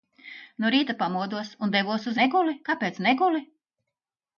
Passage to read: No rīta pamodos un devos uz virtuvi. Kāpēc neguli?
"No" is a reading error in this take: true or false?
false